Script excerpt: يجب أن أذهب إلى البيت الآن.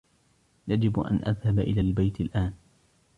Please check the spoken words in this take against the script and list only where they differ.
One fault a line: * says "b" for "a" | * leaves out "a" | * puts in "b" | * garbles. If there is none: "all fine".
all fine